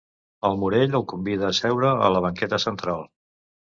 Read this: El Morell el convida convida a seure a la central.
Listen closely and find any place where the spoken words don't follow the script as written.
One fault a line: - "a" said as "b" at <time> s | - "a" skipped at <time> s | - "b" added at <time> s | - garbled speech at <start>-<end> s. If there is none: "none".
- "convida" skipped at 1.5 s
- "banqueta" added at 2.3 s